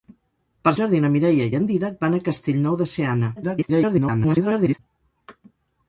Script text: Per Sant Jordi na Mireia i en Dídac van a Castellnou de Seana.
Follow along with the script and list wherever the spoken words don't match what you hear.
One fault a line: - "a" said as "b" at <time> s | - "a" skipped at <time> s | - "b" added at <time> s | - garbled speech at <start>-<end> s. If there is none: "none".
- "Sant" skipped at 0.7 s
- garbled speech at 3.4-4.8 s